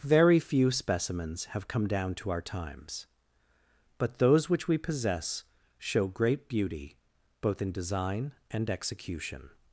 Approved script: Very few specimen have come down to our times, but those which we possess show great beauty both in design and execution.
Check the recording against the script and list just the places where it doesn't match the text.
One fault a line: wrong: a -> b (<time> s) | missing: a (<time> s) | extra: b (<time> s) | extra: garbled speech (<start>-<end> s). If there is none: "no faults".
wrong: specimen -> specimens (0.7 s)